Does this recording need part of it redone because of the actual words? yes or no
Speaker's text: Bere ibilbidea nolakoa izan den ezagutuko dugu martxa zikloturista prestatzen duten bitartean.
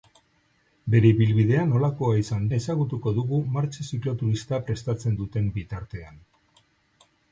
yes